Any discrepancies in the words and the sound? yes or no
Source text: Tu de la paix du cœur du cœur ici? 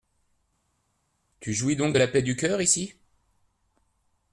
yes